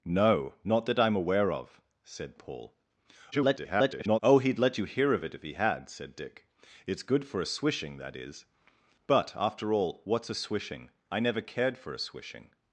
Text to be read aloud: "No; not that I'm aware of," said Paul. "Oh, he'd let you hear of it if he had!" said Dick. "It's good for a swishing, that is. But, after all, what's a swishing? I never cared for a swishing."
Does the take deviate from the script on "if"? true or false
false